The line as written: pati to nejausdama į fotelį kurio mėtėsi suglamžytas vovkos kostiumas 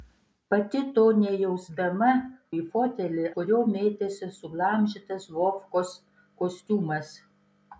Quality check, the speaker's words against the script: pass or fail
pass